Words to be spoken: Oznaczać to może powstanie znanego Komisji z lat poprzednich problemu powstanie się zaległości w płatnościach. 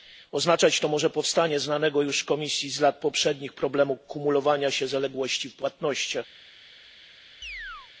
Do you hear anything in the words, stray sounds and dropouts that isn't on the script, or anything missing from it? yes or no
yes